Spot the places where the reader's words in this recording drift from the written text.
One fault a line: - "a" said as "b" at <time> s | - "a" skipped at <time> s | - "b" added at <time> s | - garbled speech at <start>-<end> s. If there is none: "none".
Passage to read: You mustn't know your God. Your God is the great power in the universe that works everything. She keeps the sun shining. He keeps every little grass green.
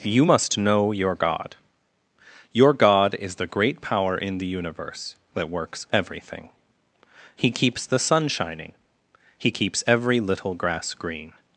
- "mustn't" said as "must" at 0.2 s
- "She" said as "He" at 7.4 s